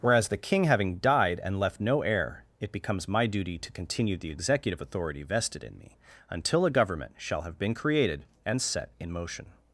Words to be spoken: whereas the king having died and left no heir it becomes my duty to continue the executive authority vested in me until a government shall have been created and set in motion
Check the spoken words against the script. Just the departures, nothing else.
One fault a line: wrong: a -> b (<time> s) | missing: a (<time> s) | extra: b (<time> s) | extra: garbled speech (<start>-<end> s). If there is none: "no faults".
no faults